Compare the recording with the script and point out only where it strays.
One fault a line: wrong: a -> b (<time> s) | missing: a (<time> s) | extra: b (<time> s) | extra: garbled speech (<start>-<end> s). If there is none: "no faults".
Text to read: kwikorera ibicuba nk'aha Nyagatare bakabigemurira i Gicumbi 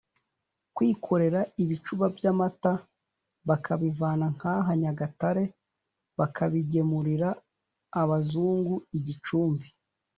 extra: by'amata bakabivana (2.1 s)
extra: abazungu (8.0 s)